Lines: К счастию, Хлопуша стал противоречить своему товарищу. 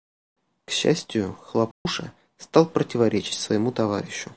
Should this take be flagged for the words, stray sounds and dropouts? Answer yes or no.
yes